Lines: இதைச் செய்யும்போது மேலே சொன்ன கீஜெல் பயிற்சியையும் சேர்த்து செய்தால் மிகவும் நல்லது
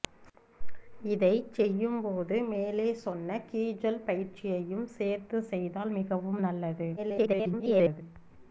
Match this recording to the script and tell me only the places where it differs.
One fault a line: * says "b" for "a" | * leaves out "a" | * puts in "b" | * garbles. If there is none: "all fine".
* garbles